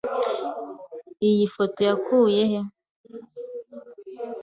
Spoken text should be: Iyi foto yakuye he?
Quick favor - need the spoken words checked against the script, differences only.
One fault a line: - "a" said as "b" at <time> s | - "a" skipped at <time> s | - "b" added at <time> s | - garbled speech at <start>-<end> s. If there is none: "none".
none